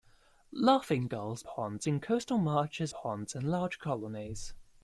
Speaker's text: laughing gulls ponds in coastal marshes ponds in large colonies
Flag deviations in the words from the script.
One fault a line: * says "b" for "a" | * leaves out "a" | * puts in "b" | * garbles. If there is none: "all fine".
all fine